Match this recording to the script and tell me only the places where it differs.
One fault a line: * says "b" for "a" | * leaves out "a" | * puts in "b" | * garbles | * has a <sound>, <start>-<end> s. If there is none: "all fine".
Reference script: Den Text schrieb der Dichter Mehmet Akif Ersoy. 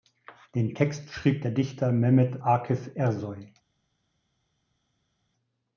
all fine